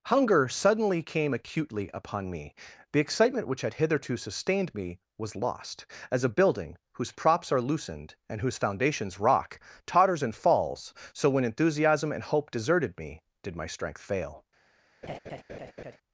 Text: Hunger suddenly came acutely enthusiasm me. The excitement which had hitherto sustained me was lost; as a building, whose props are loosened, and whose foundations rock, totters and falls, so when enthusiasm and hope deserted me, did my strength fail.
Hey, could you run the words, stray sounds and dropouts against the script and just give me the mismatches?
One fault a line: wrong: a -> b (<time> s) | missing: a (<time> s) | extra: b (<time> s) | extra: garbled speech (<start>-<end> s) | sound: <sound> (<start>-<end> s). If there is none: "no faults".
wrong: enthusiasm -> upon (1.9 s)
sound: laugh (15.0-16.0 s)